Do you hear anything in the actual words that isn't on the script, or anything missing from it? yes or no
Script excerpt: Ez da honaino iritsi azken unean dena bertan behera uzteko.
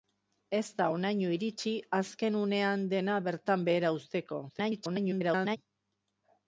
yes